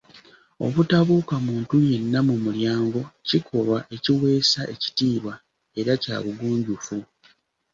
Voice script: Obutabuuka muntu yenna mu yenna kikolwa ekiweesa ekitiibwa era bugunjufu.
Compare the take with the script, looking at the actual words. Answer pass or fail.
fail